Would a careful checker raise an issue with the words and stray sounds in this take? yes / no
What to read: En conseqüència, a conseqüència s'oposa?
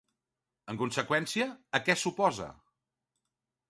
yes